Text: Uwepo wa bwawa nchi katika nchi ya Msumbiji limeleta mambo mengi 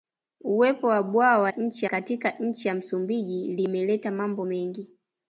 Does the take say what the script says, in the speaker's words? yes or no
yes